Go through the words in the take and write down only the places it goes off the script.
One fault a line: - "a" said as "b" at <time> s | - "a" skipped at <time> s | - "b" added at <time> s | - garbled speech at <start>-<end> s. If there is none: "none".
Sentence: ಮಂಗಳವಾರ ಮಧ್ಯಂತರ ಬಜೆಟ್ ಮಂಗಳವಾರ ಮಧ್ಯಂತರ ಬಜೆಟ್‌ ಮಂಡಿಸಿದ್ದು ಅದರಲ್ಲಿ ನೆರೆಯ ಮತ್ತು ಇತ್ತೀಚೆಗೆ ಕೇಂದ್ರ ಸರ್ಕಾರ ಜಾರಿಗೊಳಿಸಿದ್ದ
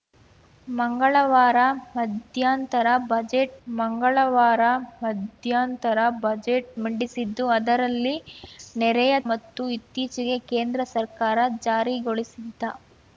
none